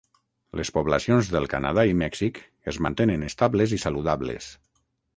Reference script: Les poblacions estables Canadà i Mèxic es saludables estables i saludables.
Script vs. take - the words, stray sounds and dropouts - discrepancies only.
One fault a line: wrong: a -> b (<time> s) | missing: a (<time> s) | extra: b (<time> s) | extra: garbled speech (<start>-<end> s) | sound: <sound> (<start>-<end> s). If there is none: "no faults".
wrong: estables -> del (1.3 s)
wrong: saludables -> mantenen (2.9 s)